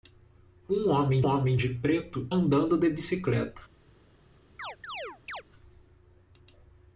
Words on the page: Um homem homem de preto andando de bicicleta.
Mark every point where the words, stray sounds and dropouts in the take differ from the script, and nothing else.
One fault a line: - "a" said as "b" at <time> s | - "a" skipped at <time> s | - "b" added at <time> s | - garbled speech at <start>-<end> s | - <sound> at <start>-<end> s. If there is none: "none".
- chirp at 4.6-5.4 s